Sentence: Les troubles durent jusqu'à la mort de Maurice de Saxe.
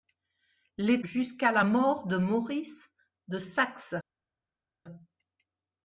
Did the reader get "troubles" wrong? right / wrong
wrong